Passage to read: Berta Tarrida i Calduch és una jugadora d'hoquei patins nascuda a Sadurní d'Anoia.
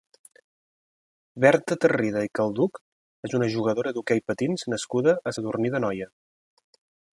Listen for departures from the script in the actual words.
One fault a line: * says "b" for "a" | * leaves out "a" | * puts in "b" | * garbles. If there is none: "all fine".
all fine